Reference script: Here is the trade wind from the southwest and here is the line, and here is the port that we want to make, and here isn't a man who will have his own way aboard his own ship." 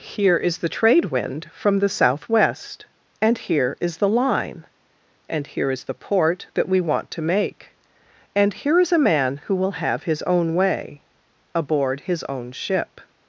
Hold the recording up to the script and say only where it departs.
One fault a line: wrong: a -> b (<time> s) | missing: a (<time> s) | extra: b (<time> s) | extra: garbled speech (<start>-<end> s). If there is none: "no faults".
wrong: isn't -> is (8.8 s)